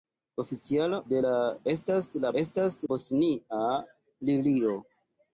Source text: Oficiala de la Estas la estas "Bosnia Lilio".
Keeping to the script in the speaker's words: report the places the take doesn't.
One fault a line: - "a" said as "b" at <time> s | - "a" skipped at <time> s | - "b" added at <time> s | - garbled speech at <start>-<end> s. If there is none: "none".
none